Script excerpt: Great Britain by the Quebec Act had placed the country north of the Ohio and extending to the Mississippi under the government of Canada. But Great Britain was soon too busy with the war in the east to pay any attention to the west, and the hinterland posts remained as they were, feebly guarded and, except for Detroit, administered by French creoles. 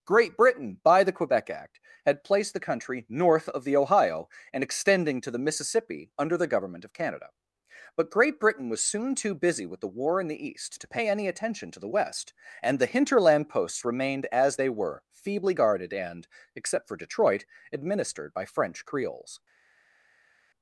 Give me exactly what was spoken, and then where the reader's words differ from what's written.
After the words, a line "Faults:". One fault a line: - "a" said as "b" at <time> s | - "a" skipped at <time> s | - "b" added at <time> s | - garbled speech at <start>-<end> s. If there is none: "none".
Great Britain by the Quebec Act had placed the country north of the Ohio and extending to the Mississippi under the government of Canada. But Great Britain was soon too busy with the war in the east to pay any attention to the west, and the hinterland posts remained as they were, feebly guarded and, except for Detroit, administered by French creoles.
Faults:
none